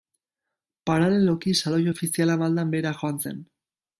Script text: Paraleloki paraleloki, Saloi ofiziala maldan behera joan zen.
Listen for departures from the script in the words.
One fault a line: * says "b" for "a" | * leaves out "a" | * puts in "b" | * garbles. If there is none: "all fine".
* leaves out "paraleloki"